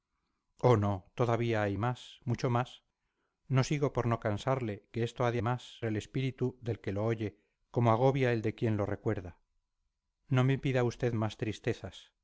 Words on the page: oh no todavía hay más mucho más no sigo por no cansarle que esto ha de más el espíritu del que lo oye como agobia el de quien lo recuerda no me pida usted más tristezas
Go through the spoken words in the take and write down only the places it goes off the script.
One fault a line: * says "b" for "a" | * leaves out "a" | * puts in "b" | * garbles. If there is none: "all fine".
all fine